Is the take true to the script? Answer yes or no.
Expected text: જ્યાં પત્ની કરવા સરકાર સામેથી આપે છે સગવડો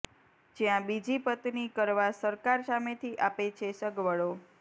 no